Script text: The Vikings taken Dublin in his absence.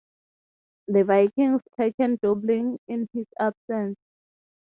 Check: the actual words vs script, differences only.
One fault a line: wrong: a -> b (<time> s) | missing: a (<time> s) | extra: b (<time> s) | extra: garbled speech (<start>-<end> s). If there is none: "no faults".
no faults